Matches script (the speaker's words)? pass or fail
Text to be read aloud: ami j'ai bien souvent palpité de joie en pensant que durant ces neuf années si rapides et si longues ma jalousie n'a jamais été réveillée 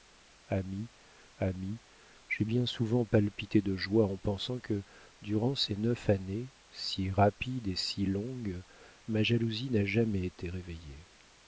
fail